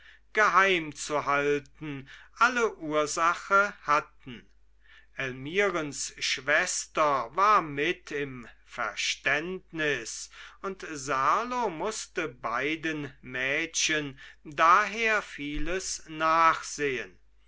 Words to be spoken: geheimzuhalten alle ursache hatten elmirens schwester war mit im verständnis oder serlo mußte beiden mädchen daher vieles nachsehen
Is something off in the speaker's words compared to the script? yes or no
yes